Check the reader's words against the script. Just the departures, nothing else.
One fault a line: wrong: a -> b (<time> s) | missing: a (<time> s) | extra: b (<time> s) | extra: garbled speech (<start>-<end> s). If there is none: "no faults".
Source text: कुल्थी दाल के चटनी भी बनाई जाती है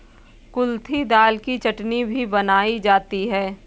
wrong: के -> की (1.4 s)